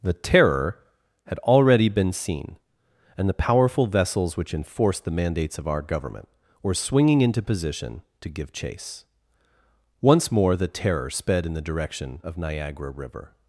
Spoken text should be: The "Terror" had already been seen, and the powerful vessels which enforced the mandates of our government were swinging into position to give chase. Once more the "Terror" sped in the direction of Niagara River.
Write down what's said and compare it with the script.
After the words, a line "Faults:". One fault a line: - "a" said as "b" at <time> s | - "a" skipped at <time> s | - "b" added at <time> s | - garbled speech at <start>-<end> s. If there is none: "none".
The "Terror" had already been seen, and the powerful vessels which enforced the mandates of our government were swinging into position to give chase. Once more the "Terror" sped in the direction of Niagara River.
Faults:
none